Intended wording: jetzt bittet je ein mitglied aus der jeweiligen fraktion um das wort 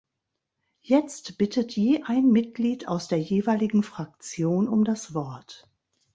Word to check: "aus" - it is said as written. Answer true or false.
true